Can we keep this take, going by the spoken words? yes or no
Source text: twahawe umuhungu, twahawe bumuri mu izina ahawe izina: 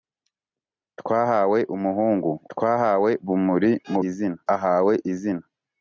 yes